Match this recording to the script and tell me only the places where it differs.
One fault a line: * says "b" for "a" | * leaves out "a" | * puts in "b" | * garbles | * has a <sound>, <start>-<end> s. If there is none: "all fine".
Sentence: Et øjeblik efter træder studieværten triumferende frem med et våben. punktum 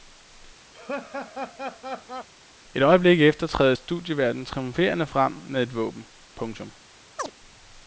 * has a laugh, 0.7-2.3 s
* has a chirp, 7.2-7.3 s